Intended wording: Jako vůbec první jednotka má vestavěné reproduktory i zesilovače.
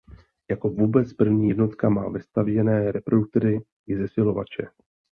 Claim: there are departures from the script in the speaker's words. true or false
false